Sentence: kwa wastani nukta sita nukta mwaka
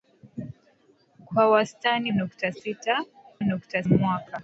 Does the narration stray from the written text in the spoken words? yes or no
no